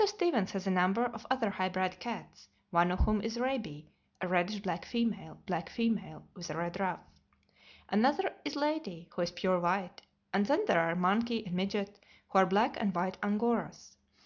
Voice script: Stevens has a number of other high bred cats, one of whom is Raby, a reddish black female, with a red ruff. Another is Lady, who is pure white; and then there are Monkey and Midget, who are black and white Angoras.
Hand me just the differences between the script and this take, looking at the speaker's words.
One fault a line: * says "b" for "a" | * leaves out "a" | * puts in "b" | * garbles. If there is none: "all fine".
* puts in "black female"